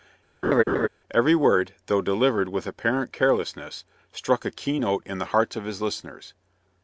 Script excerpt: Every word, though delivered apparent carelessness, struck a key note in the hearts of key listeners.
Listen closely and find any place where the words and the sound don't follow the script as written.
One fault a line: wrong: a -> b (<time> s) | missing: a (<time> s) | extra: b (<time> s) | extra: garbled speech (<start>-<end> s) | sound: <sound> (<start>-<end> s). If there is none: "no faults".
sound: laugh (0.4-0.9 s)
extra: with (2.5 s)
wrong: key -> his (5.6 s)